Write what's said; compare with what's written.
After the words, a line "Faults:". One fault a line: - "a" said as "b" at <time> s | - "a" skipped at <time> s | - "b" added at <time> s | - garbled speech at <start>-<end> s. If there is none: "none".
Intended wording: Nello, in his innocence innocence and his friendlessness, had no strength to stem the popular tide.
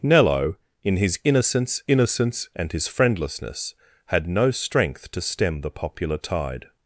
Nello, in his innocence innocence and his friendlessness, had no strength to stem the popular tide.
Faults:
none